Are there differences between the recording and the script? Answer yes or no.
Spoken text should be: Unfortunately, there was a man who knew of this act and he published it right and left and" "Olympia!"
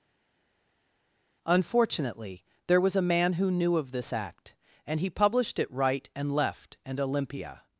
no